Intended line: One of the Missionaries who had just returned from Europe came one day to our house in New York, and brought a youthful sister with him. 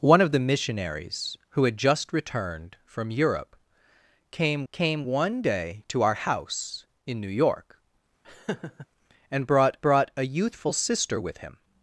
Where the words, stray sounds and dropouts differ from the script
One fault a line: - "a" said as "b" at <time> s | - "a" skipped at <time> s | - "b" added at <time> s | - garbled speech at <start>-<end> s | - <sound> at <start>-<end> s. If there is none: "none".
- "came" added at 4.7 s
- laugh at 8.2-8.9 s
- "brought" added at 9.8 s